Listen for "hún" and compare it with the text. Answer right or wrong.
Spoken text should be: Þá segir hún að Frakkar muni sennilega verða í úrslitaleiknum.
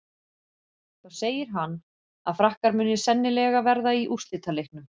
wrong